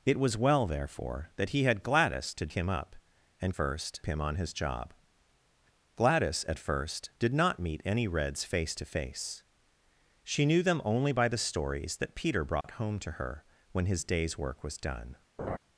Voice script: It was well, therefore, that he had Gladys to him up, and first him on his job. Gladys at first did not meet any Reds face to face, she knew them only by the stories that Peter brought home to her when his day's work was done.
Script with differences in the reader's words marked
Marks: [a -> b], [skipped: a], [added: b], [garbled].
It was well, therefore, that he had Gladys to him up, and first him on his job. Gladys at first did not meet any Reds face to face, she knew them only by the stories that Peter brought home to her when his day's work was done.